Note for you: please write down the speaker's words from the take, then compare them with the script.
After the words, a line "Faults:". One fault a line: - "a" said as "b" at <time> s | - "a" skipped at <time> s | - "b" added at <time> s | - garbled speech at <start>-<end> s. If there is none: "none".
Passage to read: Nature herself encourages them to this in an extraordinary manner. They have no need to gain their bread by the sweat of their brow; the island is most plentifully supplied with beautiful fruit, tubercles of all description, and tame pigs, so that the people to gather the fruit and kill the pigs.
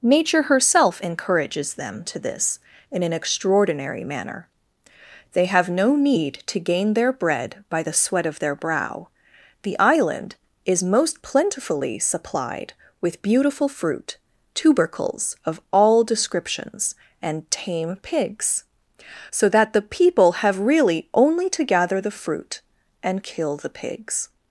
Nature herself encourages them to this in an extraordinary manner. They have no need to gain their bread by the sweat of their brow; the island is most plentifully supplied with beautiful fruit, tubercles of all descriptions, and tame pigs, so that the people have really only to gather the fruit and kill the pigs.
Faults:
- "description" said as "descriptions" at 16.0 s
- "have really only" added at 20.4 s